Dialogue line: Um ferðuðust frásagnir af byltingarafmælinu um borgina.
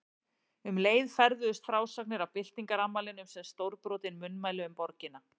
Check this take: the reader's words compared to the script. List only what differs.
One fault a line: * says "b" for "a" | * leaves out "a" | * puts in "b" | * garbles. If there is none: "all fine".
* puts in "leið"
* puts in "sem stórbrotin munnmæli"